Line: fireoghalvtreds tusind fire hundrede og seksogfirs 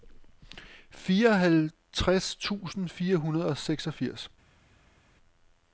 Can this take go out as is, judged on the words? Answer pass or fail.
pass